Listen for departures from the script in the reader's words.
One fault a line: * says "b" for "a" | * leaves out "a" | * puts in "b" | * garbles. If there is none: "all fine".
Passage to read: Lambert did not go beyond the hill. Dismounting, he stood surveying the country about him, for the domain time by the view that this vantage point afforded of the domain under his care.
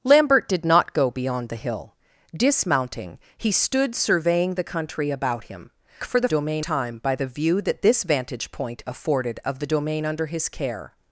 all fine